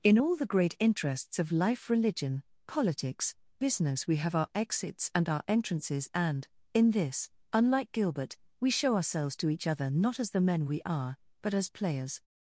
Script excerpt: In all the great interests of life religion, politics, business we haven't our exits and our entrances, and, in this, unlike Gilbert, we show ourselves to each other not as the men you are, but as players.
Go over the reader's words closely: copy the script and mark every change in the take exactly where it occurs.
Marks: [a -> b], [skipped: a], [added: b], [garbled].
In all the great interests of life religion, politics, business we [haven't -> have] our exits and our entrances, and, in this, unlike Gilbert, we show ourselves to each other not as the men [you -> we] are, but as players.